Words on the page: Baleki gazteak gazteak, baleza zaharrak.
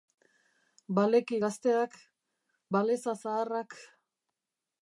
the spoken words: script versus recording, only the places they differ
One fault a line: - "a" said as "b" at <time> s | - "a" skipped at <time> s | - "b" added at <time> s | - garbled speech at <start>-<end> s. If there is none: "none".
- "gazteak" skipped at 2.0 s